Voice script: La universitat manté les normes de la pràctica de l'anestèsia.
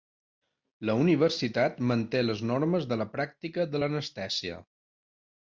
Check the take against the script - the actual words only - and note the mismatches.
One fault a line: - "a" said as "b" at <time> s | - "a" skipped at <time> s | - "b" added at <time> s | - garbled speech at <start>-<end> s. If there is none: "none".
none